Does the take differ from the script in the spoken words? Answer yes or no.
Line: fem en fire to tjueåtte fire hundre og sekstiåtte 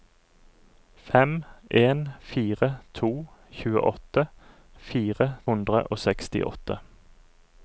no